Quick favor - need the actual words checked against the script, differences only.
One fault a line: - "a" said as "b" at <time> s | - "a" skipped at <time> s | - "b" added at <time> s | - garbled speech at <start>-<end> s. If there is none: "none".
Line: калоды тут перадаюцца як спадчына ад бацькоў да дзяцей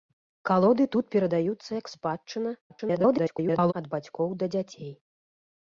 - garbled speech at 2.7-3.7 s